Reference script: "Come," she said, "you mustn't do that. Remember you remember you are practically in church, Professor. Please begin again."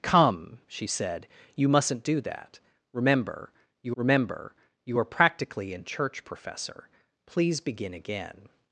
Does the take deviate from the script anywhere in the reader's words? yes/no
no